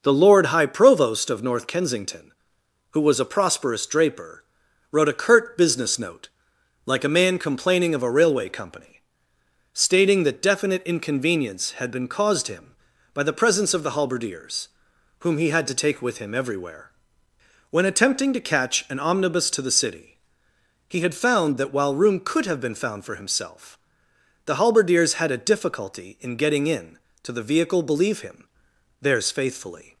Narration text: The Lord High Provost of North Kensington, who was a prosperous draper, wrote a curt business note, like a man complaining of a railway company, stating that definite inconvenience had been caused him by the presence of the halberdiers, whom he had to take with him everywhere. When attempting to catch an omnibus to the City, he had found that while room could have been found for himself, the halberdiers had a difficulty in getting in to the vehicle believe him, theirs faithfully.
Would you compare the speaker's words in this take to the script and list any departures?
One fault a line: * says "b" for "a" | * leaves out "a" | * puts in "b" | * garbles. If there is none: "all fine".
all fine